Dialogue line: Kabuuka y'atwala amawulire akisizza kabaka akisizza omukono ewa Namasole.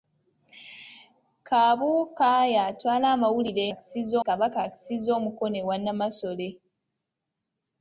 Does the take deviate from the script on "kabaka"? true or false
false